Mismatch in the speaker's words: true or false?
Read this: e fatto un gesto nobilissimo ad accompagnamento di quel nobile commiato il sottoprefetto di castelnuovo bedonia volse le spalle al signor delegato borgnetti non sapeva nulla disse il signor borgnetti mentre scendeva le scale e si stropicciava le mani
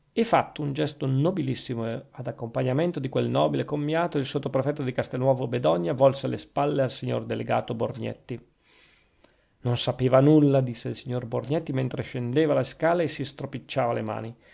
false